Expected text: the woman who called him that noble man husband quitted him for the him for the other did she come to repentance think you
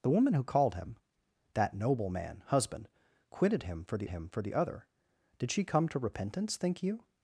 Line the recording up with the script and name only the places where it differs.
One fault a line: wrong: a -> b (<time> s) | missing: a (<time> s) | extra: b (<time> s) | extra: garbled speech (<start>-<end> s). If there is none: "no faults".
no faults